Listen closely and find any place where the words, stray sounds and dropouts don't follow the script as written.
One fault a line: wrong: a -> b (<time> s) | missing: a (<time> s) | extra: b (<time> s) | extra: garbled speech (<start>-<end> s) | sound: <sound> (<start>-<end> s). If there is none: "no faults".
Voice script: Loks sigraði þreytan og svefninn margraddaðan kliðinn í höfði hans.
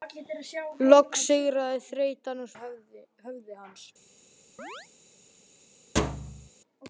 missing: svefninn margraddaðan kliðinn (2.5 s)
sound: chirp (4.6-4.9 s)
sound: thud (6.0-6.5 s)